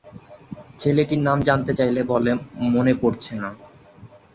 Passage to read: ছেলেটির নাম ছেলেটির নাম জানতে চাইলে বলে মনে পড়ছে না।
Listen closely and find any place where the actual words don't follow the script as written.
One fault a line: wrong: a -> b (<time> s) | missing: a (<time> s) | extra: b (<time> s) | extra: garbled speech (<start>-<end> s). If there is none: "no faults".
missing: ছেলেটির নাম (1.4 s)